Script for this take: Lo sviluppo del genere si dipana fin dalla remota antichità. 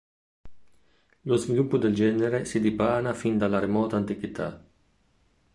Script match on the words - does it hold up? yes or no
yes